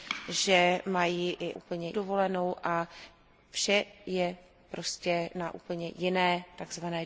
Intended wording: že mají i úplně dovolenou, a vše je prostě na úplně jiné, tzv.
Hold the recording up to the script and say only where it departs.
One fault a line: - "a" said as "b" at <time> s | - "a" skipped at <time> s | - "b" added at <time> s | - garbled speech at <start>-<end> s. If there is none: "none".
none